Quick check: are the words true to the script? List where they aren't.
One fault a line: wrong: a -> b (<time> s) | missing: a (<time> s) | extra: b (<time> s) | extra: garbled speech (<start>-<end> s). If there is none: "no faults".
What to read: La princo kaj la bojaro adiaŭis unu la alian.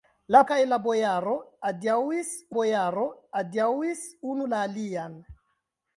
missing: princo (0.4 s)
extra: bojaro adiaŭis (2.5 s)